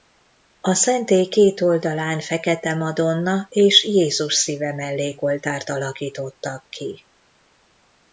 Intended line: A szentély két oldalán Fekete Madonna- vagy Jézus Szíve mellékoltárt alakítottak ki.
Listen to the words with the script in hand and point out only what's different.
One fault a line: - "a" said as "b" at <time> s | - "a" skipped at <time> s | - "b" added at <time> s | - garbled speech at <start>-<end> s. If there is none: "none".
- "vagy" said as "és" at 3.5 s